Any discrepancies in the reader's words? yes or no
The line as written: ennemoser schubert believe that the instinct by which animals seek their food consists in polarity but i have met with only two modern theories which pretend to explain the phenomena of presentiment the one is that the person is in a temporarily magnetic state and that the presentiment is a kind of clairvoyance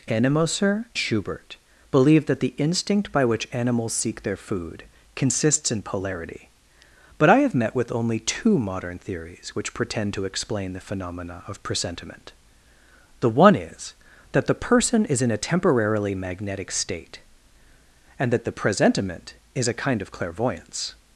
no